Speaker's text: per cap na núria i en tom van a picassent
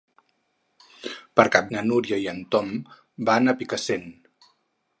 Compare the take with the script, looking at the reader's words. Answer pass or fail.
pass